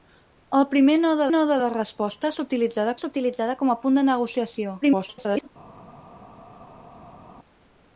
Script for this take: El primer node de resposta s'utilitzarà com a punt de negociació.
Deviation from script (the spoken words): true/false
true